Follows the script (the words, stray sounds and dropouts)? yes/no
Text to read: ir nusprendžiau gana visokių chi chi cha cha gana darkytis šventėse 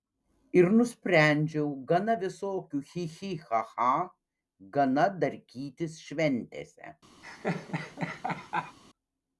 no